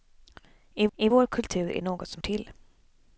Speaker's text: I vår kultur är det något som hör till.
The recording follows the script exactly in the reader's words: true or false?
false